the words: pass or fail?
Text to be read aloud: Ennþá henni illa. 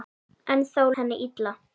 pass